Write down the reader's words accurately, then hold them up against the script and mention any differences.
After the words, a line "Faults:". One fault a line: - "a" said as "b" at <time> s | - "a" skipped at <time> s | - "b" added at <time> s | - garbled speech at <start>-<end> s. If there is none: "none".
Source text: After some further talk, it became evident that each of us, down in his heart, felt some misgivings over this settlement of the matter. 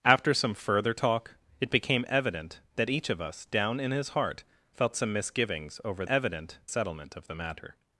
After some further talk, it became evident that each of us, down in his heart, felt some misgivings over evident settlement of the matter.
Faults:
- "this" said as "evident" at 6.1 s